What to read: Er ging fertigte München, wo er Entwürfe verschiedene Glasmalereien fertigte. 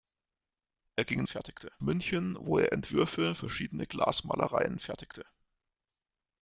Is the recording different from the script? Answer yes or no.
no